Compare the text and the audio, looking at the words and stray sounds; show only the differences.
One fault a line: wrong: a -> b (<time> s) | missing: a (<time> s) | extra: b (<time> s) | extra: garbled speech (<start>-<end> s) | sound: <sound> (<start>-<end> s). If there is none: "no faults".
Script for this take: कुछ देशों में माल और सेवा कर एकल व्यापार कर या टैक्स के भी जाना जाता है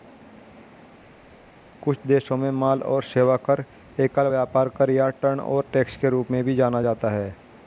extra: टर्नओवर (5.2 s)
extra: रूप में (6.1 s)